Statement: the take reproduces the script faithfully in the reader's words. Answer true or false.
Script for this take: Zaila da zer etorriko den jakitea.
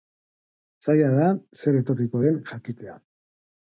true